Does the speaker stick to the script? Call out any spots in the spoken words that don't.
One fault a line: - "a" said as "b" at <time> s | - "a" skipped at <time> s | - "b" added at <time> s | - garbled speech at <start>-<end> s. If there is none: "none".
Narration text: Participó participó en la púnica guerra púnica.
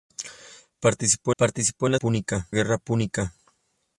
none